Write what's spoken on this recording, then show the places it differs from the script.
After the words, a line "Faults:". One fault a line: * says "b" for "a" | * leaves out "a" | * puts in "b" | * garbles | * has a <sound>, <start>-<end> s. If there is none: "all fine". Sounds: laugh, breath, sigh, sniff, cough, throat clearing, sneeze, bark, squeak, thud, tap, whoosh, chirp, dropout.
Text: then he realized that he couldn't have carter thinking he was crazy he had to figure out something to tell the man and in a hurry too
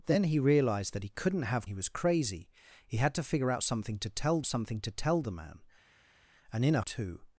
then he realized that he couldn't have he was crazy he had to figure out something to tell something to tell the man and in a too
Faults:
* leaves out "carter thinking"
* puts in "something to tell"
* leaves out "hurry"